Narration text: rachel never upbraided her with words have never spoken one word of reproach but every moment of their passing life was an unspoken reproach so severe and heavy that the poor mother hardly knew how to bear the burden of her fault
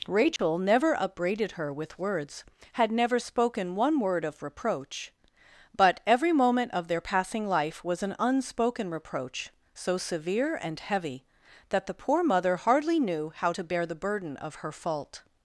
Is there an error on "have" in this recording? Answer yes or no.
yes